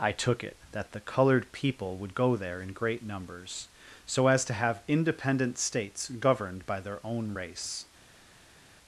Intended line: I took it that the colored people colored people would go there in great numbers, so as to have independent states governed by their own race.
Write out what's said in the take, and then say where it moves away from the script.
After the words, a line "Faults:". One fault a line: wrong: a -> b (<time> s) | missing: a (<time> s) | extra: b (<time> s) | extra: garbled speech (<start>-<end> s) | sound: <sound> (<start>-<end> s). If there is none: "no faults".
I took it that the colored people would go there in great numbers, so as to have independent states governed by their own race.
Faults:
missing: colored people (1.9 s)